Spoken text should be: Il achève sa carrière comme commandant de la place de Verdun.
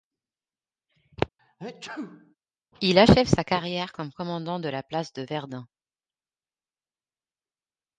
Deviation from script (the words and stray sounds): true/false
true